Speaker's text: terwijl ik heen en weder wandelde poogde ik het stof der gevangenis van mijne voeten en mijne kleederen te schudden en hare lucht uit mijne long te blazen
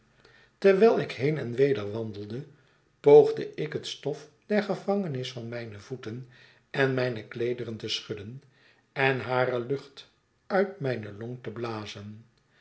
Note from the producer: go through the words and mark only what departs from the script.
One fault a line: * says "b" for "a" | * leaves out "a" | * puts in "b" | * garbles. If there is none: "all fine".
all fine